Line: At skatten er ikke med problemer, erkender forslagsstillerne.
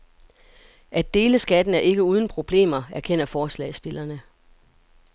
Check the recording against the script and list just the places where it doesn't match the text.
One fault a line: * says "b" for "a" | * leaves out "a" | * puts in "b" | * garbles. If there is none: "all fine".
* puts in "dele"
* says "uden" for "med"